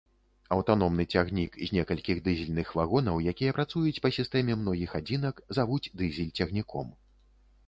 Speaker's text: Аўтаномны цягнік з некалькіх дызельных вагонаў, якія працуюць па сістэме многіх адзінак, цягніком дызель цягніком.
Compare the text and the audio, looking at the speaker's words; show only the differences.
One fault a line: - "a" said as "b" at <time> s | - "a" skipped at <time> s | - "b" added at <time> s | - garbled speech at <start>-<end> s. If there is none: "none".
- "цягніком" said as "завуць" at 5.6 s